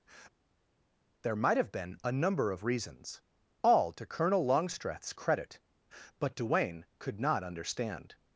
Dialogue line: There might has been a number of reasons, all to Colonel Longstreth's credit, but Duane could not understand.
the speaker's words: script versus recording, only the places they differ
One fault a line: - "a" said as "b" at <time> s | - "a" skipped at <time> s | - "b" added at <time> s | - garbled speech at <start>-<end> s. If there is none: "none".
- "has" said as "have" at 1.6 s